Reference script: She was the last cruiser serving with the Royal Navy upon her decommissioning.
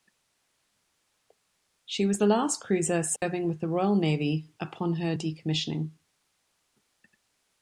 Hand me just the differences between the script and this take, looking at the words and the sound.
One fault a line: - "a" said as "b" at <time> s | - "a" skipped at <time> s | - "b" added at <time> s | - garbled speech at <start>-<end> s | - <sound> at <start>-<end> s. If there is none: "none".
- dropout at 3.2-3.2 s